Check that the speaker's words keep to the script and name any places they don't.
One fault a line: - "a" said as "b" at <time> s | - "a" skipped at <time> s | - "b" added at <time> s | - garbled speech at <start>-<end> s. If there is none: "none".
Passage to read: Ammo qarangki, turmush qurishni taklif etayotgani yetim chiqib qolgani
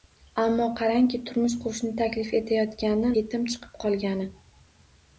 none